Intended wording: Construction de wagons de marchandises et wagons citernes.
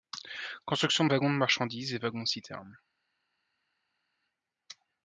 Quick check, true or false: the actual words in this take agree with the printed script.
true